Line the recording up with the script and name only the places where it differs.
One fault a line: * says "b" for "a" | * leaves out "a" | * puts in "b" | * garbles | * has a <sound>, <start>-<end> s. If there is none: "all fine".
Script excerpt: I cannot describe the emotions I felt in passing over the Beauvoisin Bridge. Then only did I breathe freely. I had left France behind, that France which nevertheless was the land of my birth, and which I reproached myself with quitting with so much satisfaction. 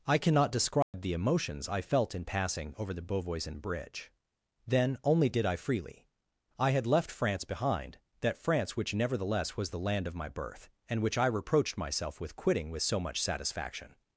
* has a dropout, 0.8-0.9 s
* leaves out "breathe"